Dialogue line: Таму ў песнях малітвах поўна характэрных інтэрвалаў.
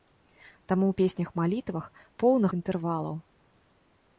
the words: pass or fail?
fail